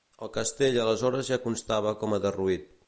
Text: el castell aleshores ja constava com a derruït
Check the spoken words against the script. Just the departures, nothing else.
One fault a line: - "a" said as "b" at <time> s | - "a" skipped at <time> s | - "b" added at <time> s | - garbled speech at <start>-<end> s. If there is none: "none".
none